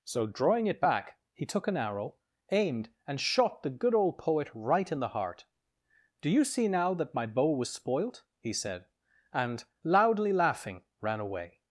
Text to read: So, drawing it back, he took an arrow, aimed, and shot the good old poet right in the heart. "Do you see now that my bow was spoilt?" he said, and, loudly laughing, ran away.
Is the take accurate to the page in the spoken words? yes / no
yes